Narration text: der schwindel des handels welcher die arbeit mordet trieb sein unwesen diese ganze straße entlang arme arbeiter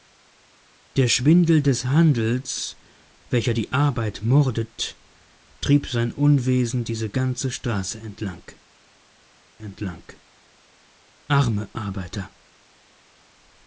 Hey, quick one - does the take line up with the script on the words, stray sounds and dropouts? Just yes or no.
no